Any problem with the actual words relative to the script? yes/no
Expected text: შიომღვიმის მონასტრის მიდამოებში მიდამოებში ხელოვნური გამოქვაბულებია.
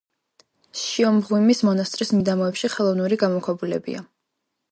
yes